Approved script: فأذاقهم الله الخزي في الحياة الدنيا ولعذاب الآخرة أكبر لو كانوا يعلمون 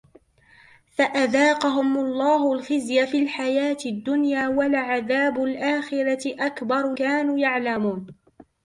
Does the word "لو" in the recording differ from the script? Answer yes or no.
yes